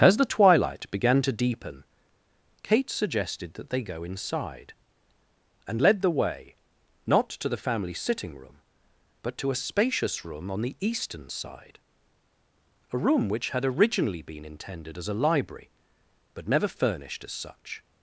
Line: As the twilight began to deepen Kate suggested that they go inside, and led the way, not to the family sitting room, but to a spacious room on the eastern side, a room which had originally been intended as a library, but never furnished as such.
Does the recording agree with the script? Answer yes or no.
yes